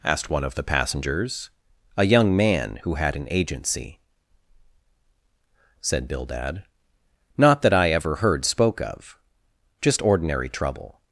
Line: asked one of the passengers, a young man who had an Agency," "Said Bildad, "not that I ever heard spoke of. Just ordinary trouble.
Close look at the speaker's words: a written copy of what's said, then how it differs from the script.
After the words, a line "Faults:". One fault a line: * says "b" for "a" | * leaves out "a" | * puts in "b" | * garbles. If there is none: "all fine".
asked one of the passengers, a young man who had an Agency," "Said Bildad, "not that I ever heard spoke of. Just ordinary trouble.
Faults:
all fine